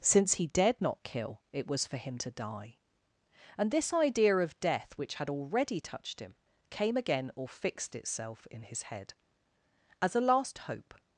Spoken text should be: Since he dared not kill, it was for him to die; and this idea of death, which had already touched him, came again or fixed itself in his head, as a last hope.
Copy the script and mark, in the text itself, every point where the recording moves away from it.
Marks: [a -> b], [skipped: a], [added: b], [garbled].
Since he dared not kill, it was for him to die; and this idea of death, which had already touched him, came again or fixed itself in his head, as a last hope.